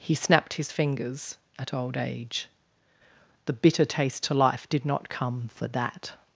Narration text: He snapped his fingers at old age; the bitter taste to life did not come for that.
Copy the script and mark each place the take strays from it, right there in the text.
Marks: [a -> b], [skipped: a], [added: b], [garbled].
He snapped his fingers at old age; the bitter taste to life did not come for that.